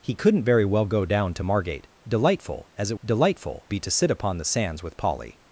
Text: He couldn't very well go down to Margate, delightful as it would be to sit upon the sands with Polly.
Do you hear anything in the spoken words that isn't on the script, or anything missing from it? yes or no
yes